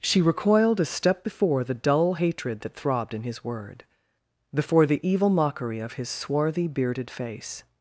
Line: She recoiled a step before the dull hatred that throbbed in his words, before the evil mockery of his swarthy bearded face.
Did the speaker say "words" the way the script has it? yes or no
no